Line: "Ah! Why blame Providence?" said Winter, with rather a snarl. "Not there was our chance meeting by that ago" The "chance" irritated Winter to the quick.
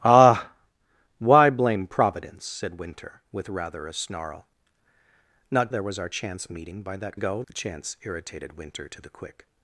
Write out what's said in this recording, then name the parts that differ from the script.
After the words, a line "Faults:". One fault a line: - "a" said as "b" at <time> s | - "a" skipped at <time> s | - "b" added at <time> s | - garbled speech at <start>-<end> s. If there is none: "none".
"Ah! Why blame Providence?" said Winter, with rather a snarl. "Not there was our chance meeting by that ago" The "chance" irritated Winter to the quick.
Faults:
none